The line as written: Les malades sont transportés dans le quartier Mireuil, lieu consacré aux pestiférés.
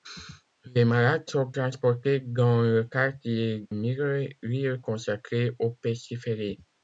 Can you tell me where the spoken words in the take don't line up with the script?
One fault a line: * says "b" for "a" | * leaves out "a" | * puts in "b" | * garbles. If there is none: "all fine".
all fine